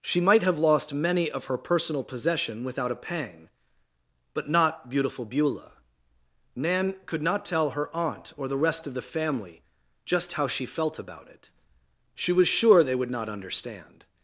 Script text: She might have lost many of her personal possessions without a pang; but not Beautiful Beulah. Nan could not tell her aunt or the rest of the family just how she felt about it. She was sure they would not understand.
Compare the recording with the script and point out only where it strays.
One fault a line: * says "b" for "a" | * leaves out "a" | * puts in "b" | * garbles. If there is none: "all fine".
* says "possession" for "possessions"